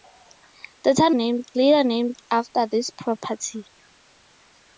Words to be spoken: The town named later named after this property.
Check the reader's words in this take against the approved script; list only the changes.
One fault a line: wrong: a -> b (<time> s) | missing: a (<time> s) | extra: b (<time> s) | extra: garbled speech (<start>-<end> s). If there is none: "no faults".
no faults